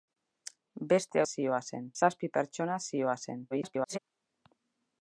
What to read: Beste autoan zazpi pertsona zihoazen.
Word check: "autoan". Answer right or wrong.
wrong